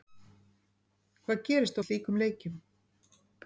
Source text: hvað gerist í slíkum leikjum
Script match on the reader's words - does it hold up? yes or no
yes